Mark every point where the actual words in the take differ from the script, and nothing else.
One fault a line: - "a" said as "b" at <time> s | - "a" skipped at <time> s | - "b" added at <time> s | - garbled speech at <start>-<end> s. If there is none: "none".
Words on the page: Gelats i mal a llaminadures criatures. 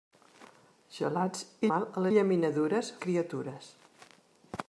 none